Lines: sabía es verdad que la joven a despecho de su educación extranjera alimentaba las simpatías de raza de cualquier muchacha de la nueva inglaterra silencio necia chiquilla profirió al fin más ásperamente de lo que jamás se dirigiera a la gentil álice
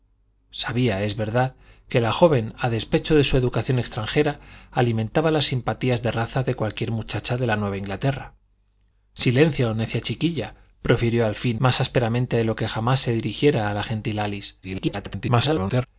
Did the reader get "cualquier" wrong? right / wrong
right